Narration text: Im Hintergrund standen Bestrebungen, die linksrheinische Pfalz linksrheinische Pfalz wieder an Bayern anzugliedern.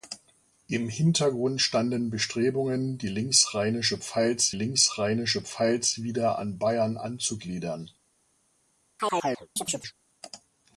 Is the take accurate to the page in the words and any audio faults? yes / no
no